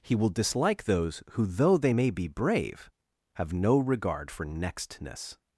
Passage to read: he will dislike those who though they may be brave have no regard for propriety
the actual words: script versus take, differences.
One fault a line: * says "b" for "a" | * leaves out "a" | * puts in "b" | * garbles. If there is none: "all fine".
* says "nextness" for "propriety"